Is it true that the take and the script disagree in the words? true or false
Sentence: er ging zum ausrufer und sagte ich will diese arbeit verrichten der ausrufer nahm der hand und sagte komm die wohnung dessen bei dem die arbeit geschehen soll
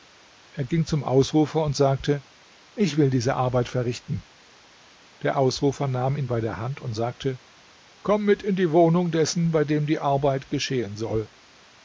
true